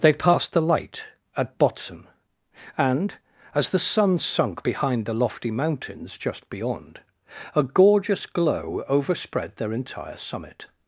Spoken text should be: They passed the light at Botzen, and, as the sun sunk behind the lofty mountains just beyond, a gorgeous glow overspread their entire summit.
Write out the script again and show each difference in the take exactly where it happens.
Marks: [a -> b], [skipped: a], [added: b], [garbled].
They passed the light at Botzen, and, as the sun sunk behind the lofty mountains just beyond, a gorgeous glow overspread their entire summit.